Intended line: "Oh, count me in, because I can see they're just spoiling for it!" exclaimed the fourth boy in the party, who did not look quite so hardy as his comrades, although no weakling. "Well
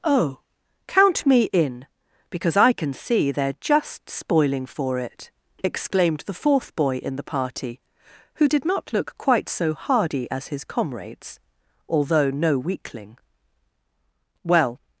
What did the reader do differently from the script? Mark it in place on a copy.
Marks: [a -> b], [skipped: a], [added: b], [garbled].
"Oh, count me in, because I can see they're just spoiling for it!" exclaimed the fourth boy in the party, who did not look quite so hardy as his comrades, although no weakling. "Well